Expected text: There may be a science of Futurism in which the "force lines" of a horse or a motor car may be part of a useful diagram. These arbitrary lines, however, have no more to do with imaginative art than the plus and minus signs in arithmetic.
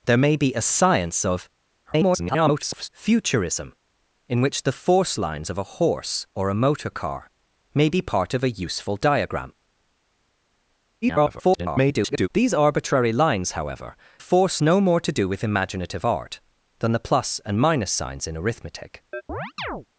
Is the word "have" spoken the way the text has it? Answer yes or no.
no